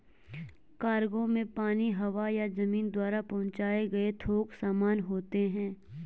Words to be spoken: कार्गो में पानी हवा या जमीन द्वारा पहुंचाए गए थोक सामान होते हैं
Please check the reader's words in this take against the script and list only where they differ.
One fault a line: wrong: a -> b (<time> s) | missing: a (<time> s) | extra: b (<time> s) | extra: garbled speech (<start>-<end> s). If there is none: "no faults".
no faults